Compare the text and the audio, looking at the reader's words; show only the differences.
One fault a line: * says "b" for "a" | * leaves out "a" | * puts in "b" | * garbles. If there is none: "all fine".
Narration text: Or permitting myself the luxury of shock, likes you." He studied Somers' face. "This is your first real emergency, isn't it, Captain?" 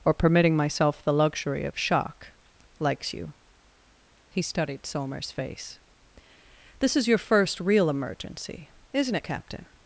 all fine